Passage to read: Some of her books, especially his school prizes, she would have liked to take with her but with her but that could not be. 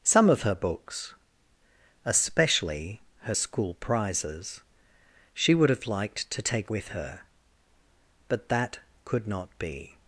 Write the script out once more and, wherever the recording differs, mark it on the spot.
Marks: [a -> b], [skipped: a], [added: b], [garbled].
Some of her books, especially [his -> her] school prizes, she would have liked to take with her but [skipped: with her but] that could not be.